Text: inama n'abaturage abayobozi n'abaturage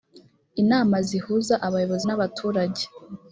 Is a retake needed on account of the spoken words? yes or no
yes